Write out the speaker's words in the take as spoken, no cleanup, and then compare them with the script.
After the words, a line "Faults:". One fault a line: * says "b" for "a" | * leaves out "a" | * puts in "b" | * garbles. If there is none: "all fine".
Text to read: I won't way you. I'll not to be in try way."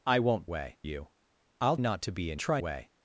I won't way you. I'll not to be in try way."
Faults:
all fine